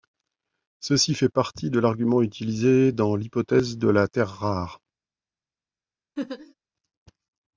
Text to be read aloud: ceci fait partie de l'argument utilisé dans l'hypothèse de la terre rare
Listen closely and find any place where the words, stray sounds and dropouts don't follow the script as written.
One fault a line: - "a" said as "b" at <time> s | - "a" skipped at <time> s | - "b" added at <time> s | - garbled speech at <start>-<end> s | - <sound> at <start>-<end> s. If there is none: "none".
- laugh at 6.2-6.5 s